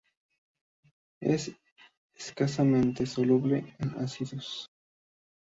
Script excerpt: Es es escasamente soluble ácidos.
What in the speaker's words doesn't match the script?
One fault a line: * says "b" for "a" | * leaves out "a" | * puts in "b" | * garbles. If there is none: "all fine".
* leaves out "es"
* puts in "en"